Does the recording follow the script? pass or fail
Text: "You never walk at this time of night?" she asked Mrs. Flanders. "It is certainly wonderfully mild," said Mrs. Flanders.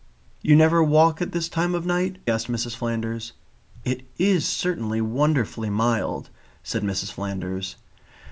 fail